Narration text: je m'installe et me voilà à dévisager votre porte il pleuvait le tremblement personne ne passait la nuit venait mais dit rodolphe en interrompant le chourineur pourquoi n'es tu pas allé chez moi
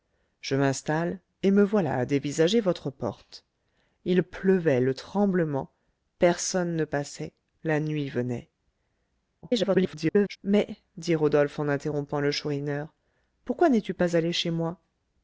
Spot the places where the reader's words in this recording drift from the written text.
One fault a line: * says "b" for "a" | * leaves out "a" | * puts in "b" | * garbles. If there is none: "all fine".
* garbles